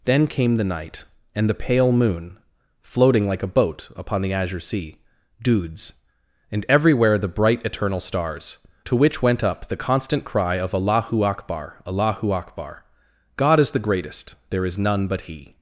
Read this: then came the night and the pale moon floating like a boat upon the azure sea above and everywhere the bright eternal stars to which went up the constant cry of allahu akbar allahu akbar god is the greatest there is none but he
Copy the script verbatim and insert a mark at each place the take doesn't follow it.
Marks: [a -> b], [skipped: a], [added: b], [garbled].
then came the night and the pale moon floating like a boat upon the azure sea [above -> dudes] and everywhere the bright eternal stars to which went up the constant cry of allahu akbar allahu akbar god is the greatest there is none but he